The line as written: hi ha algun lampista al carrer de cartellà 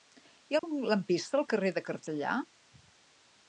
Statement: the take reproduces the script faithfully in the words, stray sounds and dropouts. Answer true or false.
false